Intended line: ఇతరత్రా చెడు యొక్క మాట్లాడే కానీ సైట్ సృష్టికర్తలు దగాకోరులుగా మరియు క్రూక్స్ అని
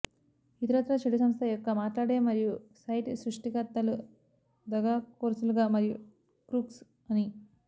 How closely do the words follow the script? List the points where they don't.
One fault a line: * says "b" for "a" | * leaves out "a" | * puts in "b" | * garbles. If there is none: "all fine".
* puts in "సంస్థ"
* says "మరియు" for "కానీ"